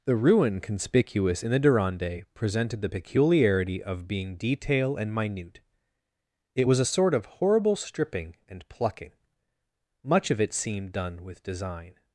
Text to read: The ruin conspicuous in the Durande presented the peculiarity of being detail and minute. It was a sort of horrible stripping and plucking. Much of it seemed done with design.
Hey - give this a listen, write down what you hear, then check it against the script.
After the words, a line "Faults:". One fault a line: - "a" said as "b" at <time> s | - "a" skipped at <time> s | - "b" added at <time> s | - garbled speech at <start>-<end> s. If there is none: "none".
The ruin conspicuous in the Durande presented the peculiarity of being detail and minute. It was a sort of horrible stripping and plucking. Much of it seemed done with design.
Faults:
none